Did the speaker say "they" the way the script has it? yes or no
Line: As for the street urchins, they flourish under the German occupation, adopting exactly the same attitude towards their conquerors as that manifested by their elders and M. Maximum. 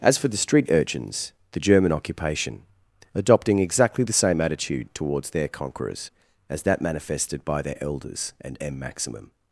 no